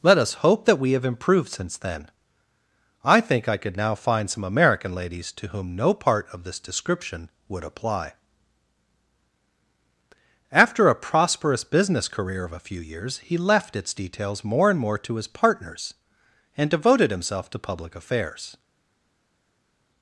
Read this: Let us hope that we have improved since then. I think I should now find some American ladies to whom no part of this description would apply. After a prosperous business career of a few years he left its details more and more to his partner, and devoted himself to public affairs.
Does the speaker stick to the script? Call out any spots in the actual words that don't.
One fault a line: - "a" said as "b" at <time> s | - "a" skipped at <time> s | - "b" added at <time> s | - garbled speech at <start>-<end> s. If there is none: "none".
- "should" said as "could" at 3.6 s
- "partner" said as "partners" at 15.3 s